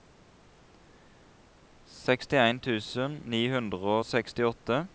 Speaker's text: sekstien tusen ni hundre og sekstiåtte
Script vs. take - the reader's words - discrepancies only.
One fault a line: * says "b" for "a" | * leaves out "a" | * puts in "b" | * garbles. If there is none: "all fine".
all fine